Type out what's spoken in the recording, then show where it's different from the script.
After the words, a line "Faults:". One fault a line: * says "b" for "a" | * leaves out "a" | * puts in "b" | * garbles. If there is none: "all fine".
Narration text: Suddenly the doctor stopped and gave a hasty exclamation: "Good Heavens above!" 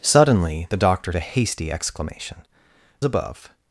Suddenly the doctor a hasty exclamation: "Above!"
Faults:
* leaves out "stopped and gave"
* leaves out "Good Heavens"